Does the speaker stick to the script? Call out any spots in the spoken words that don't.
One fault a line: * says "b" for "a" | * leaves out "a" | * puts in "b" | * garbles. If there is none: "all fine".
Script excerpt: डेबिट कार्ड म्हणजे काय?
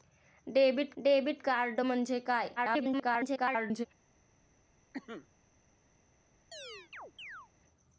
* puts in "डेबिट"
* garbles